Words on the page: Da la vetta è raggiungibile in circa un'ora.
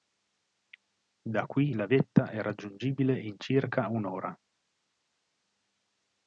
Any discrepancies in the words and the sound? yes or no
yes